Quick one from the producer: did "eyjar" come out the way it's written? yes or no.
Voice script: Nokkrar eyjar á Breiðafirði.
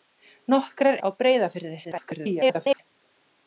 no